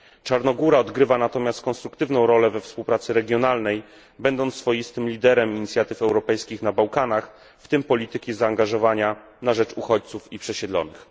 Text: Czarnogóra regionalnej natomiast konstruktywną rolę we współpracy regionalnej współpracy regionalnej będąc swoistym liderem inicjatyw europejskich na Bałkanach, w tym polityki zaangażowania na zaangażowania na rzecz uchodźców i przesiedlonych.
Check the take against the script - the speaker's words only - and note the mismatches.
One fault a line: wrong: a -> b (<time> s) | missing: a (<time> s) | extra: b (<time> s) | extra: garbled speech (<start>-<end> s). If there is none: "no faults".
wrong: regionalnej -> odgrywa (0.8 s)
missing: współpracy regionalnej (3.8 s)
missing: zaangażowania na (9.5 s)